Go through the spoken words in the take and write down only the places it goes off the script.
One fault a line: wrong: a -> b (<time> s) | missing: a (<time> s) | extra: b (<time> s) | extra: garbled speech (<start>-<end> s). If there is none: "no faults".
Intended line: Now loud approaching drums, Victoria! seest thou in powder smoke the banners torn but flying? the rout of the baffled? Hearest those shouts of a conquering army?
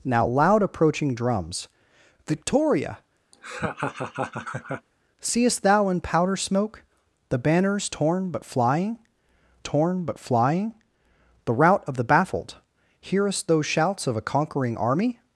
extra: torn but flying (9.6 s)